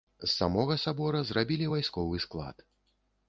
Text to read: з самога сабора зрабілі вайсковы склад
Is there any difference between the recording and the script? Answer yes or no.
no